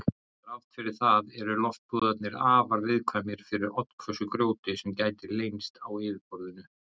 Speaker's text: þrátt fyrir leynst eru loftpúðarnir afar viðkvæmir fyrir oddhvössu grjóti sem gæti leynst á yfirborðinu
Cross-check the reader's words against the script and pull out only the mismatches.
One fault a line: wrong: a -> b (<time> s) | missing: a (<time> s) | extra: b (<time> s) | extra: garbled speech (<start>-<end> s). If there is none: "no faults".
wrong: leynst -> það (1.0 s)